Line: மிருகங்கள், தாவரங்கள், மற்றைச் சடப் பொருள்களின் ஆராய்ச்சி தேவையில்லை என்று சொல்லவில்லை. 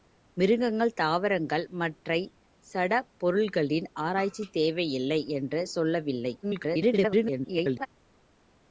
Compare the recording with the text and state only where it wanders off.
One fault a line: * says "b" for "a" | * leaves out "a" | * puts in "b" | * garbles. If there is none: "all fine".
* garbles